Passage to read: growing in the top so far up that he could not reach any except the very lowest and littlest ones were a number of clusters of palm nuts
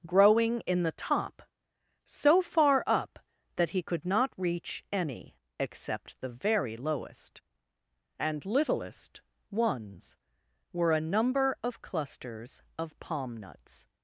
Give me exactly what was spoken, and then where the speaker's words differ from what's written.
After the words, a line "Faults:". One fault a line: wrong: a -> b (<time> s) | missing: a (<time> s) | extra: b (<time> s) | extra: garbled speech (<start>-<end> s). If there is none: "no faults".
growing in the top so far up that he could not reach any except the very lowest and littlest ones were a number of clusters of palm nuts
Faults:
no faults